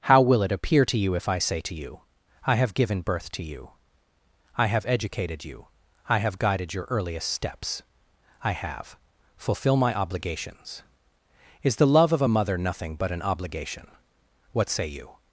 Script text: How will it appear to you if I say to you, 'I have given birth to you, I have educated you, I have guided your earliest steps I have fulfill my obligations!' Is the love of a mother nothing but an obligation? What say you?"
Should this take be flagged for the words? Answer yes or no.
no